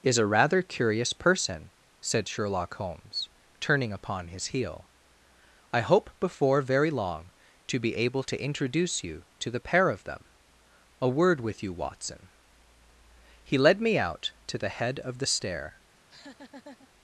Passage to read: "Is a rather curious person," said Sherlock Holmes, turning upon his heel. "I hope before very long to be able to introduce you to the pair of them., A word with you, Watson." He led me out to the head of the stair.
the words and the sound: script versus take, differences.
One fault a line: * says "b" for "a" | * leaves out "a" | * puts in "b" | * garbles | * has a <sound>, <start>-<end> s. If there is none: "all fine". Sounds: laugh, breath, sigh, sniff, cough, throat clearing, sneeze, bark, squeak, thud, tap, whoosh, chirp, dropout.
* has a laugh, 16.0-16.9 s